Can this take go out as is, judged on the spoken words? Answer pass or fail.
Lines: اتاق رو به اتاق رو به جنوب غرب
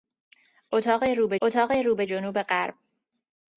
pass